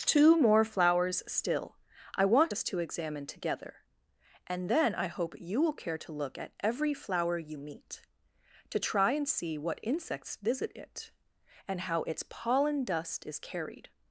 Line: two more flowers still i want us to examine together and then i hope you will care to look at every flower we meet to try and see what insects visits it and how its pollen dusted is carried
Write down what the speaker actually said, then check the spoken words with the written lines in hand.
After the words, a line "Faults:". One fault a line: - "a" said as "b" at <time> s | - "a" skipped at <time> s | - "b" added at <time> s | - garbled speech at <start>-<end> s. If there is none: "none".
two more flowers still i want us to examine together and then i hope you will care to look at every flower you meet to try and see what insects visit it and how its pollen dust is carried
Faults:
- "we" said as "you" at 7.4 s
- "visits" said as "visit" at 10.4 s
- "dusted" said as "dust" at 12.8 s